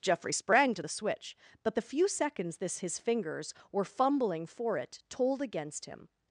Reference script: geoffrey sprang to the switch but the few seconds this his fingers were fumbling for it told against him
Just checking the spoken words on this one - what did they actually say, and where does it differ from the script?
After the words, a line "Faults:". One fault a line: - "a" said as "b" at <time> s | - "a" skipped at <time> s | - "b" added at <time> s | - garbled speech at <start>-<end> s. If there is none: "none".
geoffrey sprang to the switch but the few seconds this his fingers were fumbling for it told against him
Faults:
none